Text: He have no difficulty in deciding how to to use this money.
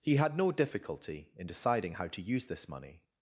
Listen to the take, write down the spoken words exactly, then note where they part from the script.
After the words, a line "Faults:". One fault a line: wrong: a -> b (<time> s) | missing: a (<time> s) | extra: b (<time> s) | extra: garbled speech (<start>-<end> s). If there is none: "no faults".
He had no difficulty in deciding how to use this money.
Faults:
wrong: have -> had (0.1 s)
missing: to (2.2 s)